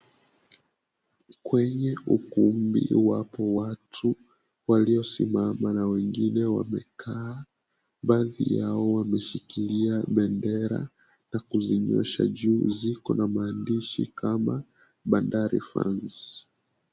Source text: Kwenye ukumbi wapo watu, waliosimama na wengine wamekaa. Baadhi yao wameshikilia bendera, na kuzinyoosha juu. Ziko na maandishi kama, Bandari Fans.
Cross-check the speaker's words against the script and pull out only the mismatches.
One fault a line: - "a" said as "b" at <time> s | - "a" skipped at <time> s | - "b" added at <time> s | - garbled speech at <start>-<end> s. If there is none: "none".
none